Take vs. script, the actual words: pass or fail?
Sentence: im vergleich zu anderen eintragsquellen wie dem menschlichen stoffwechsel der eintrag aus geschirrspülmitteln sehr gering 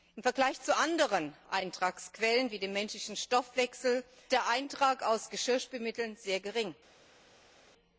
pass